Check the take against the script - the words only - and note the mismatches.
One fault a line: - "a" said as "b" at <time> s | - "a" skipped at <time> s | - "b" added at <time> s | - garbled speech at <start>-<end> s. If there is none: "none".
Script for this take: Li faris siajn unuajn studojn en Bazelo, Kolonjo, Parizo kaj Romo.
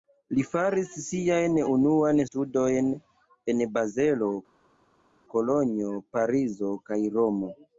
none